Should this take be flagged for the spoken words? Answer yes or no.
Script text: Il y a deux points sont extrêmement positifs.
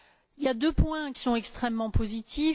no